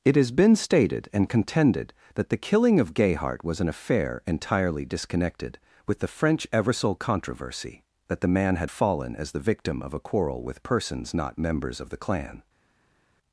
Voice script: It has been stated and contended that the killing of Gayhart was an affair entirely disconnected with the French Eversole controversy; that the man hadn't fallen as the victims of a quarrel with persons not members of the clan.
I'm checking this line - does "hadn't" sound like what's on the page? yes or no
no